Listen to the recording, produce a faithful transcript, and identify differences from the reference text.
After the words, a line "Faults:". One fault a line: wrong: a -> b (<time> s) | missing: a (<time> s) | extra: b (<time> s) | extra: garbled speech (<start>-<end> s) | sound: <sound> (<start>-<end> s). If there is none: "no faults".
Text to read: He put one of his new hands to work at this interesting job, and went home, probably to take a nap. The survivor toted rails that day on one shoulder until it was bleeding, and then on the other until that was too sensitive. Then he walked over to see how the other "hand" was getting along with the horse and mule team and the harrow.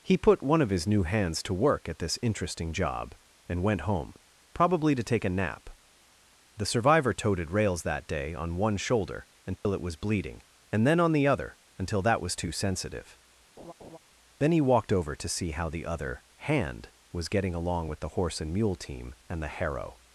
He put one of his new hands to work at this interesting job, and went home, probably to take a nap. The survivor toted rails that day on one shoulder until it was bleeding, and then on the other until that was too sensitive. Then he walked over to see how the other "hand" was getting along with the horse and mule team and the harrow.
Faults:
sound: dropout (9.6-9.7 s)
sound: laugh (13.6-14.0 s)